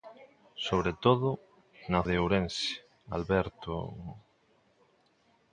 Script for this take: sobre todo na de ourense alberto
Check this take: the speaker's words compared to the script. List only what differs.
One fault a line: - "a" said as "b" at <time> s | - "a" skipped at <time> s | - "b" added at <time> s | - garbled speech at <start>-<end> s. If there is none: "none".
none